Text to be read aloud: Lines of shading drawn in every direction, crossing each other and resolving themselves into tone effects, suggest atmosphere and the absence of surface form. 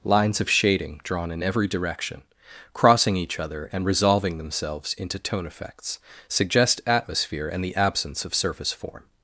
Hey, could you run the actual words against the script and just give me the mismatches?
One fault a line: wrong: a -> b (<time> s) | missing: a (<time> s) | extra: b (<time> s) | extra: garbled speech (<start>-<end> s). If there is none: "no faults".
no faults